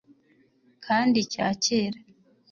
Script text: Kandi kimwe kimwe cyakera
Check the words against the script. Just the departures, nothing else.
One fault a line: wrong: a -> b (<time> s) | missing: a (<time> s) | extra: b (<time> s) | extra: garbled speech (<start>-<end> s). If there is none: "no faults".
missing: kimwe kimwe (1.2 s)